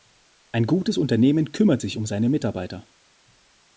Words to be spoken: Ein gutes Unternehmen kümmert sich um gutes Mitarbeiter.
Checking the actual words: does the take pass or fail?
fail